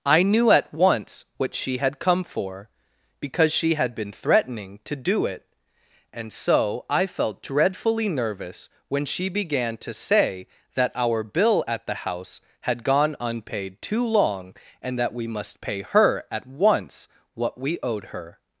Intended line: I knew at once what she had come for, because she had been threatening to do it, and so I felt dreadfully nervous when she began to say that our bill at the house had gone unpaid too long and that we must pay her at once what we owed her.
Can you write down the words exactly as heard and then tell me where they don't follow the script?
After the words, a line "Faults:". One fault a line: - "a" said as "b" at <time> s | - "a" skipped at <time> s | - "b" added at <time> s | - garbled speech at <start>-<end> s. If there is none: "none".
I knew at once what she had come for, because she had been threatening to do it, and so I felt dreadfully nervous when she began to say that our bill at the house had gone unpaid too long and that we must pay her at once what we owed her.
Faults:
none